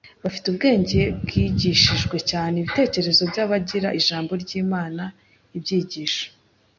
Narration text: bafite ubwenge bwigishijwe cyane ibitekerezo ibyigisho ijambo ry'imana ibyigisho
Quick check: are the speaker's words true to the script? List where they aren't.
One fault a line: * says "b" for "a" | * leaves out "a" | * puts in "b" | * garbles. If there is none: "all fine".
* says "by'abagira" for "ibyigisho"